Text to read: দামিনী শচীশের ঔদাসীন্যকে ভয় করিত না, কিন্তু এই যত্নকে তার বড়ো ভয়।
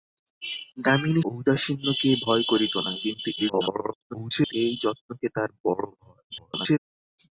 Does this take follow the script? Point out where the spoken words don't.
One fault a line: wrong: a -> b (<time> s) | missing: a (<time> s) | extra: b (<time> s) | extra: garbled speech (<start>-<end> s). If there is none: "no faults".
missing: শচীশের (1.2 s)
extra: garbled speech (3.4-4.5 s)
extra: garbled speech (6.3-6.8 s)